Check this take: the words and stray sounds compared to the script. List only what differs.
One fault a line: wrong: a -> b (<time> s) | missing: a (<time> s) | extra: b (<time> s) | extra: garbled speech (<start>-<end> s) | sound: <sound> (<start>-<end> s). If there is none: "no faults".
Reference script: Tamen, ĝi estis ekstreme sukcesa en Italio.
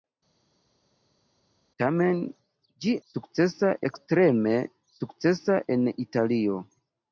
wrong: estis -> sukcesa (3.1 s)